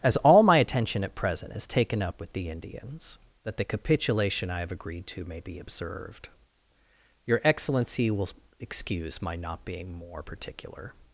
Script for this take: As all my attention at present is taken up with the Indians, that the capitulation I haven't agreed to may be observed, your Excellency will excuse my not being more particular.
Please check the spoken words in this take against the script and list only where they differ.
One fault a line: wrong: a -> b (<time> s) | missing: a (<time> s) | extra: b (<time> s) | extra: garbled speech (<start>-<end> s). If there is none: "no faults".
wrong: haven't -> have (4.6 s)